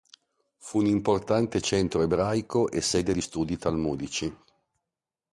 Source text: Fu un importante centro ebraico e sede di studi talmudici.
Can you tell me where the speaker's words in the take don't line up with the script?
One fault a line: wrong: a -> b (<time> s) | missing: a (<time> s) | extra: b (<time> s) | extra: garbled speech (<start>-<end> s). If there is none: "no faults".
no faults